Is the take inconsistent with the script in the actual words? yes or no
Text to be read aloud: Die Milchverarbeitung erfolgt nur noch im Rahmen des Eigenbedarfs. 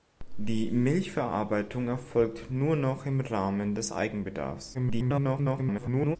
yes